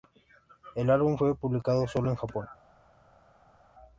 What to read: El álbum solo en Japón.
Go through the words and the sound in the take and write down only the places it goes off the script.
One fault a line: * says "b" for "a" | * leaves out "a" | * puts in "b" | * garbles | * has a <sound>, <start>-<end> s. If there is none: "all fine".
* puts in "fue publicado"